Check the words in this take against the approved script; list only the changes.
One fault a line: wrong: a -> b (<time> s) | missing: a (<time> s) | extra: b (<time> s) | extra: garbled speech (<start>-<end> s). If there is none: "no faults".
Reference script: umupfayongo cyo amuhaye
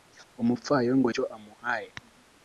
no faults